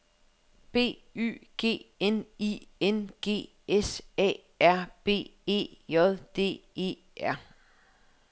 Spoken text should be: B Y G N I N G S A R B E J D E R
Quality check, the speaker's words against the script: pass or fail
pass